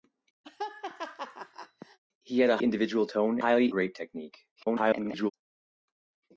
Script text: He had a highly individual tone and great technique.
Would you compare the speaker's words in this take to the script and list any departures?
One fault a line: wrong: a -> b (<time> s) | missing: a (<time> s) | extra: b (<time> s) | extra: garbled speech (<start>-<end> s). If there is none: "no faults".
missing: highly (2.6 s)
wrong: and -> highly (3.4 s)
extra: garbled speech (4.6-5.3 s)